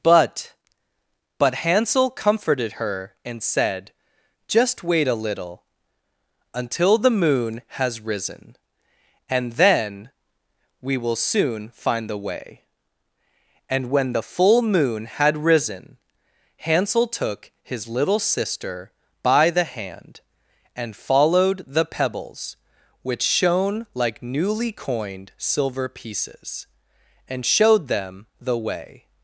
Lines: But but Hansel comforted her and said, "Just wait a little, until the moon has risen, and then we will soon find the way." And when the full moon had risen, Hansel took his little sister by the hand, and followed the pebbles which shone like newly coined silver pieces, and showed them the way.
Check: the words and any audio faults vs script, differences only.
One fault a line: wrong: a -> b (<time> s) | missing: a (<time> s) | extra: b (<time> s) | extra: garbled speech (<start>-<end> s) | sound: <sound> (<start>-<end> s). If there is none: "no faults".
no faults